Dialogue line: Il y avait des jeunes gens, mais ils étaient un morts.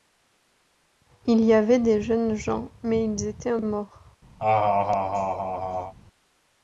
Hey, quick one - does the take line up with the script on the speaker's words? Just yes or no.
yes